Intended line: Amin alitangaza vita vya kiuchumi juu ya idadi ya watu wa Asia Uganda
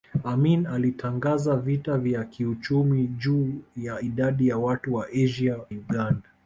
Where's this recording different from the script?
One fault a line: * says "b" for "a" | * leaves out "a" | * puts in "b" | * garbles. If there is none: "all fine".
all fine